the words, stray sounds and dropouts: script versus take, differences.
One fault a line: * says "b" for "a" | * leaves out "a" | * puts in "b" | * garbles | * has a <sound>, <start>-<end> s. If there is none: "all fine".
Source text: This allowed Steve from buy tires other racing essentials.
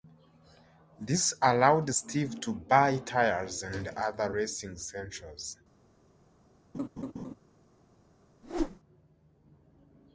* says "to" for "from"
* puts in "and"
* has a laugh, 6.7-7.3 s
* has a whoosh, 8.4-8.8 s